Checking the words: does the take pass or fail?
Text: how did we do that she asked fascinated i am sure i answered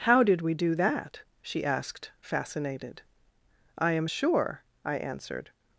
pass